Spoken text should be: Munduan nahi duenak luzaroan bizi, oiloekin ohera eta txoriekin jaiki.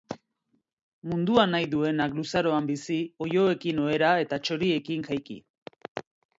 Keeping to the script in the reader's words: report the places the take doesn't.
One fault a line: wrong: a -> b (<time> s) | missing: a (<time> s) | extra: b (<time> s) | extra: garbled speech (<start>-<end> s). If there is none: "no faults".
no faults